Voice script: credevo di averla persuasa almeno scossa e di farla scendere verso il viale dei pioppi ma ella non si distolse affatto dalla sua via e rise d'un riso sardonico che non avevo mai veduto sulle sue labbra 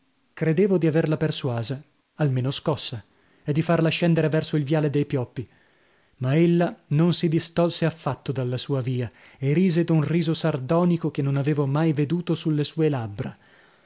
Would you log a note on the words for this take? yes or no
no